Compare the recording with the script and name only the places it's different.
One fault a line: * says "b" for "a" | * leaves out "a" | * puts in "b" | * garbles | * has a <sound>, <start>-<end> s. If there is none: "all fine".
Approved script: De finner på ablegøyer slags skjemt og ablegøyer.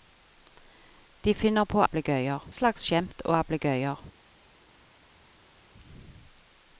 all fine